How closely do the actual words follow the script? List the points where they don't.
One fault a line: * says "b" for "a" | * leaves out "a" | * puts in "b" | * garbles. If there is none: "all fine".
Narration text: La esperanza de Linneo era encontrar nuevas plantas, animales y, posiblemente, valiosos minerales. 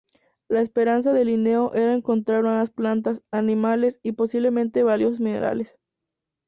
all fine